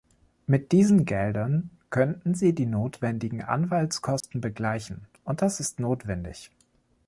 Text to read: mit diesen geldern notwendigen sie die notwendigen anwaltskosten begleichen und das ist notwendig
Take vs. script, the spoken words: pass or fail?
fail